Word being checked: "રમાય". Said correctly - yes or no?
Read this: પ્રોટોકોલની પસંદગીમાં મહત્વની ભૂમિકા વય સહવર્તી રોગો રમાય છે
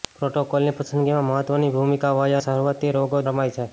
yes